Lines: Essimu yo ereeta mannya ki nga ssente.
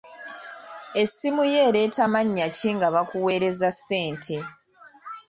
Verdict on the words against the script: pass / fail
fail